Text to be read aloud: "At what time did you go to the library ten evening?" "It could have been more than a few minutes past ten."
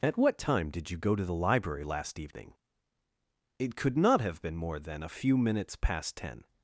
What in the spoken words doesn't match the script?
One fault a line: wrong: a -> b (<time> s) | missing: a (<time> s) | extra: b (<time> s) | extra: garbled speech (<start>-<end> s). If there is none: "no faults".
wrong: ten -> last (1.8 s)
extra: not (4.0 s)